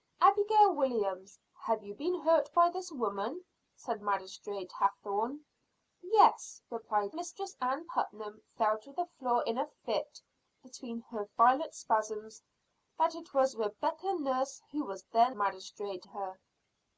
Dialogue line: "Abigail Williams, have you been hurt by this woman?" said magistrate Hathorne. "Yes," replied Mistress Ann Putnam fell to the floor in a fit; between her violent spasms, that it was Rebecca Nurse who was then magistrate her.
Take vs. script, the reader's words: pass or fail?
pass